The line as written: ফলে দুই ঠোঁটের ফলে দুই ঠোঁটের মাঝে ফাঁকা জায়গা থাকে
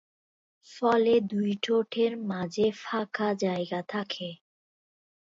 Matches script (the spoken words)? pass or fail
fail